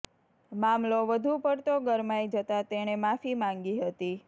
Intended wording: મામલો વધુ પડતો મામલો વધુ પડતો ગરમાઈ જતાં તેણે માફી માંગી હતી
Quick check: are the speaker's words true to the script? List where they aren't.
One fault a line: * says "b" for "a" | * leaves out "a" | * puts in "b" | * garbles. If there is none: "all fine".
* leaves out "મામલો વધુ પડતો"